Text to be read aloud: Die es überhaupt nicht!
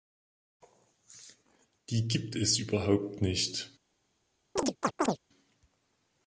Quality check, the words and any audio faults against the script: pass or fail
fail